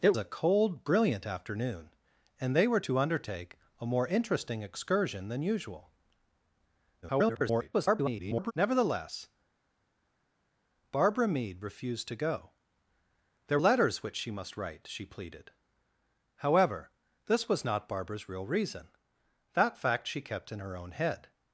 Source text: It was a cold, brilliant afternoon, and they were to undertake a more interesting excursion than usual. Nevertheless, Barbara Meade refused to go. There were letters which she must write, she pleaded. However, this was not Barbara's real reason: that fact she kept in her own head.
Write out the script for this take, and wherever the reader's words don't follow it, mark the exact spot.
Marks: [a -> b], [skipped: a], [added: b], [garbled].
It [skipped: was] a cold, brilliant afternoon, and they were to undertake a more interesting excursion than usual. [garbled] Nevertheless, Barbara Meade refused to go. There [skipped: were] letters which she must write, she pleaded. However, this was not Barbara's real reason: that fact she kept in her own head.